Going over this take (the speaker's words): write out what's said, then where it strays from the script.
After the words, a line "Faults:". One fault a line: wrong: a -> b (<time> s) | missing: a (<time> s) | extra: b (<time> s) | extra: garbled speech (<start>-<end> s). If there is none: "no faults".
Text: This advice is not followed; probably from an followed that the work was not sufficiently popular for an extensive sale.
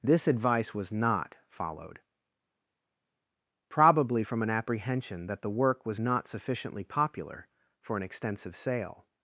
This advice was not followed; probably from an apprehension that the work was not sufficiently popular for an extensive sale.
Faults:
wrong: is -> was (0.7 s)
wrong: followed -> apprehension (4.5 s)